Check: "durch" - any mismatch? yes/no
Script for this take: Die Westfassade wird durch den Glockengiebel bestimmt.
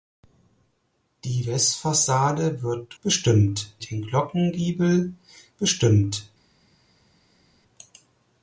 yes